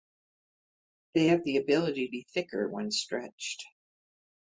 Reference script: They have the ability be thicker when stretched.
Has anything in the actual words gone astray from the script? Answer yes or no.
no